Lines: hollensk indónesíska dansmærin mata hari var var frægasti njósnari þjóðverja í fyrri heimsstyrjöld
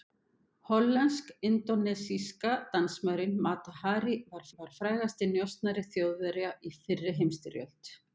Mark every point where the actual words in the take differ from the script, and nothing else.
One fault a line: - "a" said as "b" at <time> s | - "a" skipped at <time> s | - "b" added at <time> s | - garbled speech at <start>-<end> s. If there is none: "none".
none